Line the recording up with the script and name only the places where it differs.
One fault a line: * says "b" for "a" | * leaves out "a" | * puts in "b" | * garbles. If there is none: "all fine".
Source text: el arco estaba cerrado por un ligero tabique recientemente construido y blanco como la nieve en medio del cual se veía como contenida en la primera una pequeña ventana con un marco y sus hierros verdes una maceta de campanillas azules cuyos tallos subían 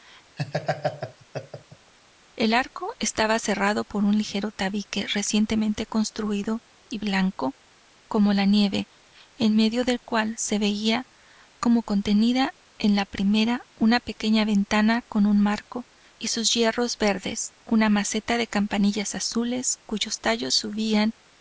all fine